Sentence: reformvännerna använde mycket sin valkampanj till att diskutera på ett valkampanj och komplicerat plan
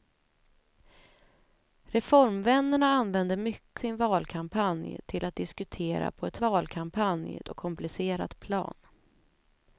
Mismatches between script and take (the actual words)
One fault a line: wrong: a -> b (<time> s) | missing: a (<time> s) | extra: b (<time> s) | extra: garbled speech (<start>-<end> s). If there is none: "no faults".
no faults